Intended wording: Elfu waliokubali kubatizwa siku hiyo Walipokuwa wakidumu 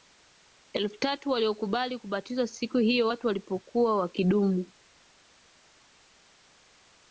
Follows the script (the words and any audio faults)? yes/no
no